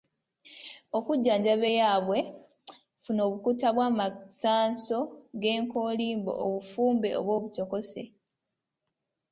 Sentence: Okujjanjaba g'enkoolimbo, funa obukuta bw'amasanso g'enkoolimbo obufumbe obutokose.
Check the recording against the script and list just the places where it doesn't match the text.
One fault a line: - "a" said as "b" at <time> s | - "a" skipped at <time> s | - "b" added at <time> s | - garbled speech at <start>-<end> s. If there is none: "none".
- "g'enkoolimbo" said as "eyaabwe" at 1.7 s
- "oba" added at 7.2 s